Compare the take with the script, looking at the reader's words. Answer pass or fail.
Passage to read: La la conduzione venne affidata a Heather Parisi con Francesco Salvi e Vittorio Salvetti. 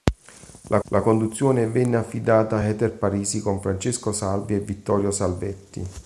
pass